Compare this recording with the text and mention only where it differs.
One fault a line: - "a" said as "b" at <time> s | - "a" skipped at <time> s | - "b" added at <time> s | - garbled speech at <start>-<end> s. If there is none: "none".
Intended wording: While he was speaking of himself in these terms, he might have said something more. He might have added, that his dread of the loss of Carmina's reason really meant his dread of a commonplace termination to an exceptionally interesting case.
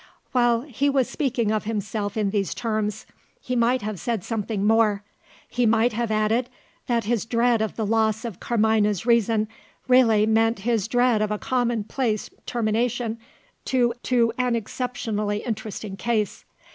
- "to" added at 14.0 s